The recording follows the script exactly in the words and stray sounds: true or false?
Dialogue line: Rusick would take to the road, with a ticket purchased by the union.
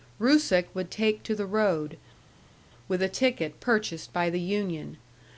true